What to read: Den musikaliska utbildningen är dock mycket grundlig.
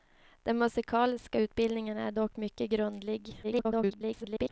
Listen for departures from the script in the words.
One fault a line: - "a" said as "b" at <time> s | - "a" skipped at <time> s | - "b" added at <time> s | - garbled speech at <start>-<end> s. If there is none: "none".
- garbled speech at 3.4-4.5 s